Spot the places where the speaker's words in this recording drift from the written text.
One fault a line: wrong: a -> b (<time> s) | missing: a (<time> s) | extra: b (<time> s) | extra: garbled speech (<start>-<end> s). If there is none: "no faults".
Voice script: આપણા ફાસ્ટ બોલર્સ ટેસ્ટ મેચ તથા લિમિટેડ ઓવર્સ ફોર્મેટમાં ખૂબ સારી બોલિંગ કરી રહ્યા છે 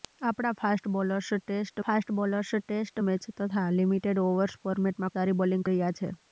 extra: ફાસ્ટ બોલર્સ ટેસ્ટ (1.8 s)
missing: ખૂબ (5.2 s)
missing: કરી (5.7 s)